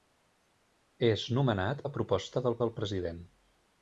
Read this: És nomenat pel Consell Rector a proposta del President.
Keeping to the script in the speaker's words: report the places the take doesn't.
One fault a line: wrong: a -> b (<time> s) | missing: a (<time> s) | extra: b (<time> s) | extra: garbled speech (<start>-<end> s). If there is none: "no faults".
missing: pel Consell Rector (1.8 s)
extra: del (2.6 s)